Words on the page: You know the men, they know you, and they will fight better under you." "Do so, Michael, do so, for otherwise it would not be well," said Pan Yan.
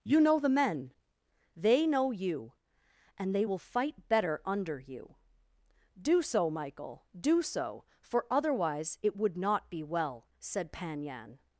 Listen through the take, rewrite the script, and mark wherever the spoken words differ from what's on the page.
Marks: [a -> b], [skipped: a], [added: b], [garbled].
You know the men, they know you, and they will fight better under you." "Do so, Michael, do so, for otherwise it would not be well," said Pan Yan.